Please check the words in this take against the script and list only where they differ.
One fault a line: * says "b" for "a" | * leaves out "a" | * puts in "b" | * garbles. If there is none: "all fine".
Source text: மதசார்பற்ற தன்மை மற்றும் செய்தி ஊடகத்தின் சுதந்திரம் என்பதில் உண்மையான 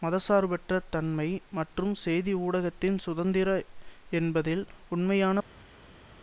all fine